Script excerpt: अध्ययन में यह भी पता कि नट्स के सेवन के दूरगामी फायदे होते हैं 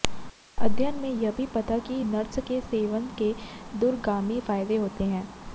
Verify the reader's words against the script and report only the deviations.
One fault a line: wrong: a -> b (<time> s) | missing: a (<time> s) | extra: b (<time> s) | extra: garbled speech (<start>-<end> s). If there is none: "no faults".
no faults